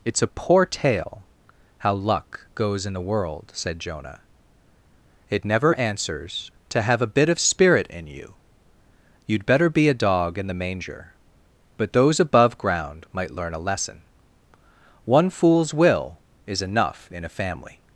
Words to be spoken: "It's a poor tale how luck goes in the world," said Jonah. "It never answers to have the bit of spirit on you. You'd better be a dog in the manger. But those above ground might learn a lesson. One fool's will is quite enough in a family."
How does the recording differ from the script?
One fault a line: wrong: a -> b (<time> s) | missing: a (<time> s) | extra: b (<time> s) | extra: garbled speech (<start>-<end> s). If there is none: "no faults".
wrong: the -> a (7.0 s)
wrong: on -> in (7.8 s)
missing: quite (16.6 s)